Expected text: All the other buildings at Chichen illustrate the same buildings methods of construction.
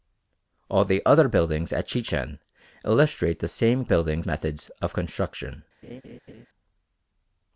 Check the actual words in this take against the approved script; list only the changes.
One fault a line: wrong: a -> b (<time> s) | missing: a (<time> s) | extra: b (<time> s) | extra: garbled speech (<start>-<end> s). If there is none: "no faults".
no faults